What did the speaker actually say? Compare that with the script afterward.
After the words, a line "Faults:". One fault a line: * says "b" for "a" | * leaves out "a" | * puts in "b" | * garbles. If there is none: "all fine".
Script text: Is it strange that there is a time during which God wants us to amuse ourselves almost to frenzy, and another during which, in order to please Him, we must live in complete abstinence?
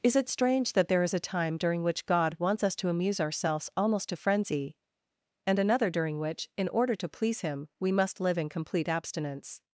Is it strange that there is a time during which God wants us to amuse ourselves almost to frenzy, and another during which, in order to please Him, we must live in complete abstinence?
Faults:
all fine